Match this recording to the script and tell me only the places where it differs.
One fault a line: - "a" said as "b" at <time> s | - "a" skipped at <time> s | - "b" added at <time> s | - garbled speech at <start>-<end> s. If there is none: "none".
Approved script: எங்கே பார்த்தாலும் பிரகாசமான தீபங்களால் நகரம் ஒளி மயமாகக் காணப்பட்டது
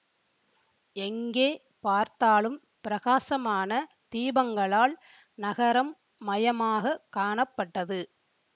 - "ஒளி" skipped at 5.9 s